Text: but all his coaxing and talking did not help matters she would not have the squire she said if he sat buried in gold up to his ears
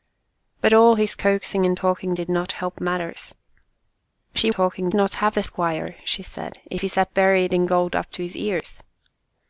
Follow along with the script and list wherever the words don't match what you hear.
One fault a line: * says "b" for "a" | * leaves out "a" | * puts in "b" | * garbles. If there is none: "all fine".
* says "talking" for "would"